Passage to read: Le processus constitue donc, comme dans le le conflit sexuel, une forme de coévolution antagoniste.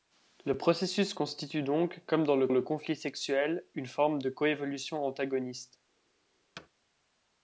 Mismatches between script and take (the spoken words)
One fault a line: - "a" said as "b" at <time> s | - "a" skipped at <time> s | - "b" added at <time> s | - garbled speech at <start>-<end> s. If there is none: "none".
none